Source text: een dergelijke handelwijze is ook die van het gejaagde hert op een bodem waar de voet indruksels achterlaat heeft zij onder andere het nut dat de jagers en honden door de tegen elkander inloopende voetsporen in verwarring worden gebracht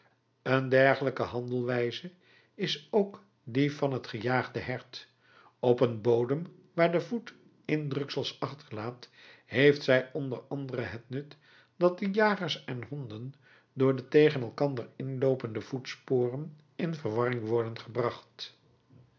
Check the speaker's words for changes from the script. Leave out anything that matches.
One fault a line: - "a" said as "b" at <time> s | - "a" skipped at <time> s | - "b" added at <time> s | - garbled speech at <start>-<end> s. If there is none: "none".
none